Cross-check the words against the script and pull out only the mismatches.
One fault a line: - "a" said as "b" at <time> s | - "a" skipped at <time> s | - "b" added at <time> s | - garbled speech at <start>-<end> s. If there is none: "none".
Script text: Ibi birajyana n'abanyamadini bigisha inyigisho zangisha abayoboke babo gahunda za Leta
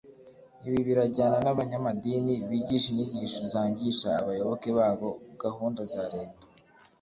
none